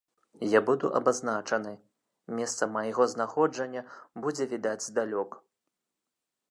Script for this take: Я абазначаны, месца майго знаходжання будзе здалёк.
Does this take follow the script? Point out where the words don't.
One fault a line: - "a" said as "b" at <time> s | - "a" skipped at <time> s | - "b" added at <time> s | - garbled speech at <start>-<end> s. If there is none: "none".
- "буду" added at 0.7 s
- "відаць" added at 4.5 s